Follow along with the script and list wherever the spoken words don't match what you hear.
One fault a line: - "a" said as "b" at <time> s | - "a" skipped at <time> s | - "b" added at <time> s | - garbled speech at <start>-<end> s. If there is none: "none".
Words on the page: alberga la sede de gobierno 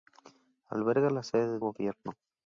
none